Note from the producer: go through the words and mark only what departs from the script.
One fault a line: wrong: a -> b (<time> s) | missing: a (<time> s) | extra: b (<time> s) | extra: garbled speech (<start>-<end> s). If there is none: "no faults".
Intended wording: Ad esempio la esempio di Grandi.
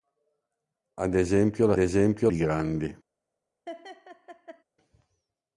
no faults